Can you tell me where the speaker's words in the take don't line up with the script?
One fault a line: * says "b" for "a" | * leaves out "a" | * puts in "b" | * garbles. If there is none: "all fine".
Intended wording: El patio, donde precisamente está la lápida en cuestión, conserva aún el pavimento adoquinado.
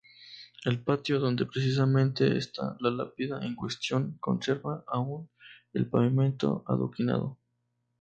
all fine